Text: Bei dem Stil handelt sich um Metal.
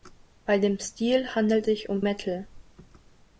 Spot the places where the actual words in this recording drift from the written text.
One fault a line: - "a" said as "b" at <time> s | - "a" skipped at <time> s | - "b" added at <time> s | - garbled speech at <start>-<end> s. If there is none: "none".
none